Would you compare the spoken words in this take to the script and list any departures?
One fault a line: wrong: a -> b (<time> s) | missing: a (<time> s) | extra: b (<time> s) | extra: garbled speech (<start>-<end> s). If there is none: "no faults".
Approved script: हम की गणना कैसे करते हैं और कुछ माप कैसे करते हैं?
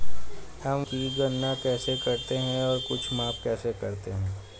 no faults